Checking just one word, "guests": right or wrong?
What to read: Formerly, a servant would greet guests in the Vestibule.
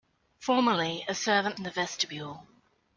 wrong